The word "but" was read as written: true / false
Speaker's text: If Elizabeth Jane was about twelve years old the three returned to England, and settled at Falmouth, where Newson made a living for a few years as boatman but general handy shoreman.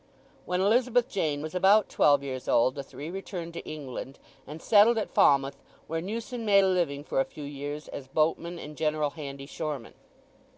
false